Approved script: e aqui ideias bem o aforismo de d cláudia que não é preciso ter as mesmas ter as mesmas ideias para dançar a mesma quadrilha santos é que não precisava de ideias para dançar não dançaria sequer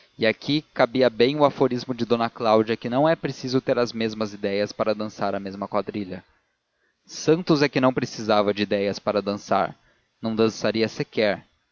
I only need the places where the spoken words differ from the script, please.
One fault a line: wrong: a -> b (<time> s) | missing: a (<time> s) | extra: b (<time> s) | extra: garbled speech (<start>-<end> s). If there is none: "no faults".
wrong: ideias -> cabia (0.7 s)
missing: ter as mesmas (4.3 s)